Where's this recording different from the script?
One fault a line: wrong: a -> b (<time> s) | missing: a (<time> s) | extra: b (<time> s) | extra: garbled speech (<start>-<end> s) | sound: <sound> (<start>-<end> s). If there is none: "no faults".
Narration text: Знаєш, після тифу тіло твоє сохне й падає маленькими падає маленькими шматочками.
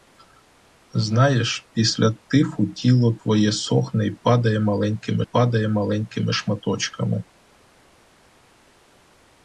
no faults